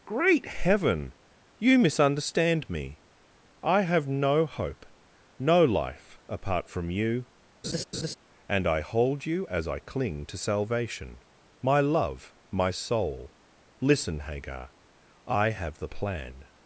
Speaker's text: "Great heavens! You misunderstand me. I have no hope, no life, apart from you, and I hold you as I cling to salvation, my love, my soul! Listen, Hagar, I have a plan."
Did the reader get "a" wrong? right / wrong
wrong